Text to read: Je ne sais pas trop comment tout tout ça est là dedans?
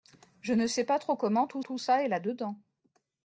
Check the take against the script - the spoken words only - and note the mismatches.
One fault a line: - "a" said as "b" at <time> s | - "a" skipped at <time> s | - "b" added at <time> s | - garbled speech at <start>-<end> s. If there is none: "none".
none